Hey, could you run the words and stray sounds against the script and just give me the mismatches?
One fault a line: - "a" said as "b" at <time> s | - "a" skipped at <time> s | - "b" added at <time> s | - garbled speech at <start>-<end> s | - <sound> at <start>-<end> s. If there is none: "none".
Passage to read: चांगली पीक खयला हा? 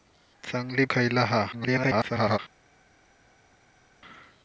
- "पीक" skipped at 0.8 s
- garbled speech at 1.5-2.4 s